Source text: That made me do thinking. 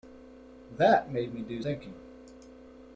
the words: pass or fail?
pass